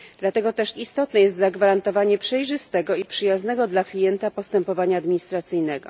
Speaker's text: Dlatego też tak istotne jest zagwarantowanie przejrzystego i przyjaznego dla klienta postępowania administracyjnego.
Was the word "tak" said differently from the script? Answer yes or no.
yes